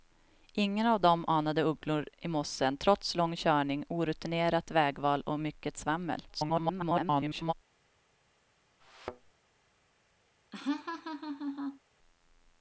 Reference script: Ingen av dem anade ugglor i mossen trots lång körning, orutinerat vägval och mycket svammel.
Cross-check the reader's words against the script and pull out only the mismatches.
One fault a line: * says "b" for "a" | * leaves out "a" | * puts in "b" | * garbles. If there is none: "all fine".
* garbles